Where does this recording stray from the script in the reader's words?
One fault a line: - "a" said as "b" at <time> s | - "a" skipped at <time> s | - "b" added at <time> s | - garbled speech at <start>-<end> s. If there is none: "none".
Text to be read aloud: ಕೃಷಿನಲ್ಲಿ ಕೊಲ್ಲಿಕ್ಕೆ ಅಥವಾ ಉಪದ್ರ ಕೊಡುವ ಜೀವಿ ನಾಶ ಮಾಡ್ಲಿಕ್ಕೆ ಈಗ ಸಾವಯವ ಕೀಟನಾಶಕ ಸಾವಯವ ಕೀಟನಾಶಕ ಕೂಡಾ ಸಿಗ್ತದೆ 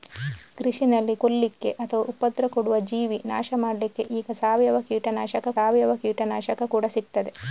none